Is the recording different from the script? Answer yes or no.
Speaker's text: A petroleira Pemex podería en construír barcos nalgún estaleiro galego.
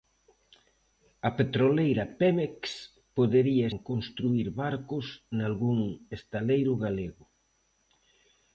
no